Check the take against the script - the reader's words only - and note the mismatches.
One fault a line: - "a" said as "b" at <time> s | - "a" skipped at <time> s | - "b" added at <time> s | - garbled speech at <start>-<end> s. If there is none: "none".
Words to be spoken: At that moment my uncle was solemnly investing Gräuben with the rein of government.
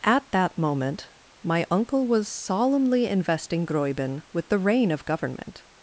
none